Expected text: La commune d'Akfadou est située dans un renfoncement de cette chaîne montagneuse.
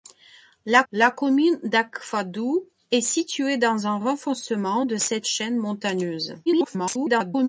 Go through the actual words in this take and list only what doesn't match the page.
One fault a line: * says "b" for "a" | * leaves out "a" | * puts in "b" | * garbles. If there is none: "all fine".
* puts in "la"
* garbles